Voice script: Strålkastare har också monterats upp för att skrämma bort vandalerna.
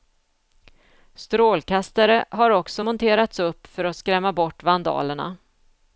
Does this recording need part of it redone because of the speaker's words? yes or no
no